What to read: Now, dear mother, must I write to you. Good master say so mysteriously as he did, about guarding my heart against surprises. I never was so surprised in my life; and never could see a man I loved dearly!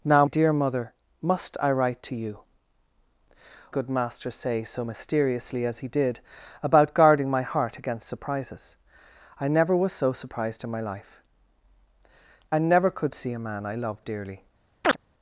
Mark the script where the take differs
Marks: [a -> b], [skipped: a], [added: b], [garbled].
Now, dear mother, must I write to you. Good master say so mysteriously as he did, about guarding my heart against surprises. I never was so surprised in my life; and never could see a man I loved dearly!